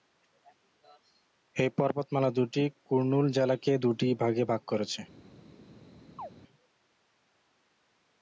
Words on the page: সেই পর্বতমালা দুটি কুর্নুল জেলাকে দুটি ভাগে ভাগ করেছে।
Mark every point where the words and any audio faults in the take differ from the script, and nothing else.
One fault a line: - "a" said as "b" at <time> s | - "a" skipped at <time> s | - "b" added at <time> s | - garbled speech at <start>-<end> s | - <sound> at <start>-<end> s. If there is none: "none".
- "সেই" said as "এই" at 1.6 s
- chirp at 6.2-6.3 s